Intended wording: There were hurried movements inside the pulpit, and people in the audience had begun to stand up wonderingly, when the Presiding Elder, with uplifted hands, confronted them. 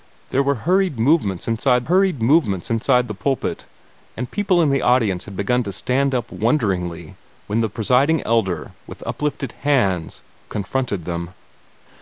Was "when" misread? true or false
false